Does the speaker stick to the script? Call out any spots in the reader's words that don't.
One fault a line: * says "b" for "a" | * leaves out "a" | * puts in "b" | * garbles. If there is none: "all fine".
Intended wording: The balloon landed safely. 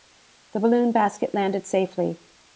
* puts in "basket"